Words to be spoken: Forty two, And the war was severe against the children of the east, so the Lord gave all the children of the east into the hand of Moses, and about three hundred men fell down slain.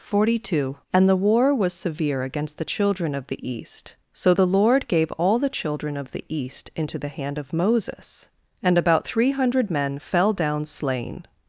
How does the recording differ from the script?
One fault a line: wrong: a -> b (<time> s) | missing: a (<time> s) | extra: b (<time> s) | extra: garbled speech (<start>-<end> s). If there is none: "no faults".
no faults